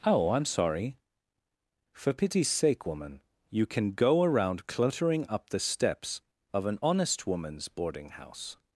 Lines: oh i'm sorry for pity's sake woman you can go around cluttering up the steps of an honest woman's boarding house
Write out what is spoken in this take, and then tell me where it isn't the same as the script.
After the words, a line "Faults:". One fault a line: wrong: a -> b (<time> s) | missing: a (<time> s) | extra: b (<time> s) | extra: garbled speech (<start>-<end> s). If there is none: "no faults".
oh i'm sorry for pity's sake woman you can go around cluttering up the steps of an honest woman's boarding house
Faults:
no faults